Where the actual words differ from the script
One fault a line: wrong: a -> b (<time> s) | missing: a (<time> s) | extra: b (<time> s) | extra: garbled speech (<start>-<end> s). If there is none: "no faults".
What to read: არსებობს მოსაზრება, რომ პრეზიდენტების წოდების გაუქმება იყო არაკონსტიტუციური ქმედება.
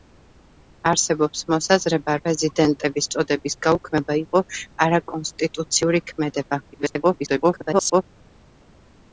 missing: რომ (2.1 s)
extra: garbled speech (6.7-8.0 s)